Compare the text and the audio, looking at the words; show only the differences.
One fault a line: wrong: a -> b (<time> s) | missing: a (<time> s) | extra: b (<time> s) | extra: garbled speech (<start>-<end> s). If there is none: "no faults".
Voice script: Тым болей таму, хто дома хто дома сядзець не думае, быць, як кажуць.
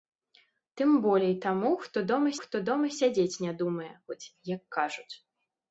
no faults